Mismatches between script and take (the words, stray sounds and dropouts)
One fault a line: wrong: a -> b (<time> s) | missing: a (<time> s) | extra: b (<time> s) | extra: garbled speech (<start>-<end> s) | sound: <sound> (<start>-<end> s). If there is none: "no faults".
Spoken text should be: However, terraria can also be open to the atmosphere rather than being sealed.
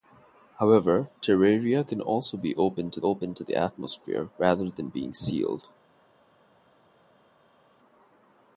extra: open to (3.0 s)